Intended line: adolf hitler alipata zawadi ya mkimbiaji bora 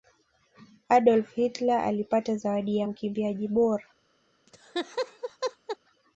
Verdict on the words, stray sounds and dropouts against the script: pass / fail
fail